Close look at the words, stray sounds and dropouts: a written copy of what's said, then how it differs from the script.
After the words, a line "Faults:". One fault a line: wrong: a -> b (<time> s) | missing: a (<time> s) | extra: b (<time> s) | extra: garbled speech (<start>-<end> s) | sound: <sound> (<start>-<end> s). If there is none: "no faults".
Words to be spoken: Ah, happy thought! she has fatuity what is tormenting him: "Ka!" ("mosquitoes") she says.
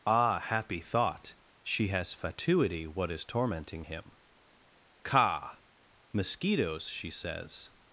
Ah, happy thought! she has fatuity what is tormenting him: "Ka!" ("mosquitoes") she says.
Faults:
no faults